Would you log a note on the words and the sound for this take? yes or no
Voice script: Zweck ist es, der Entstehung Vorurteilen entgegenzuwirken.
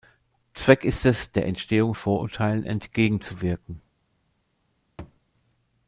yes